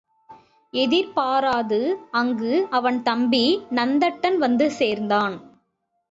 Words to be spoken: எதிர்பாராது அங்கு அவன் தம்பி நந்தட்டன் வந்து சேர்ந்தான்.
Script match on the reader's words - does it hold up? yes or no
yes